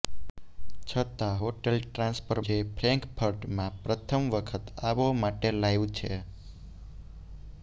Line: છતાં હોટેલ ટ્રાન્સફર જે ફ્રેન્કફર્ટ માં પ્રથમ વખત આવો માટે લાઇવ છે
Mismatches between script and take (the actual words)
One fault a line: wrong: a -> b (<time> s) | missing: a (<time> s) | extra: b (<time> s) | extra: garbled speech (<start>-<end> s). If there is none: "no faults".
no faults